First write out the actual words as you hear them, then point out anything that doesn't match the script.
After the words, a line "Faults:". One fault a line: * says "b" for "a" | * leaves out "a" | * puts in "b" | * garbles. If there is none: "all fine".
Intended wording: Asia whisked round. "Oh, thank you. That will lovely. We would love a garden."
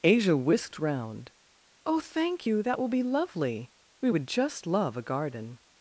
Asia whisked round. "Oh, thank you. That will be lovely. We would just love a garden."
Faults:
* puts in "be"
* puts in "just"